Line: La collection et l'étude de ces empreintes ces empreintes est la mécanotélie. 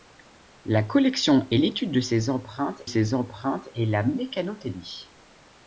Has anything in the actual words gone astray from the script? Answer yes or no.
no